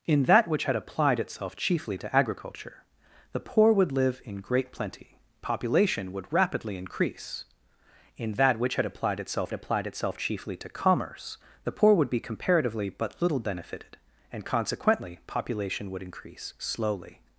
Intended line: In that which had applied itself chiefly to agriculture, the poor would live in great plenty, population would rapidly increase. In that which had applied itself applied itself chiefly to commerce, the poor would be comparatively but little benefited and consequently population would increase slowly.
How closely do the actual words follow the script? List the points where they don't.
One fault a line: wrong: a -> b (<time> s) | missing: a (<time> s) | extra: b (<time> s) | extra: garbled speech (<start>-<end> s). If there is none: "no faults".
no faults